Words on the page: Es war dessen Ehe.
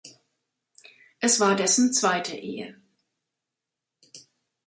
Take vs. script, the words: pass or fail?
fail